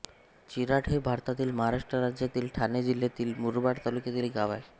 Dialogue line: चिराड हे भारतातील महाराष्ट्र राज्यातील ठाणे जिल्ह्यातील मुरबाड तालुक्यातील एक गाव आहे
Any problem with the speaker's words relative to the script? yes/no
no